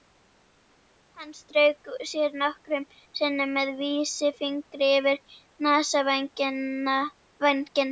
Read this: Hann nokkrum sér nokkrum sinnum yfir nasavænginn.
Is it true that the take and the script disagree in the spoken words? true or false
true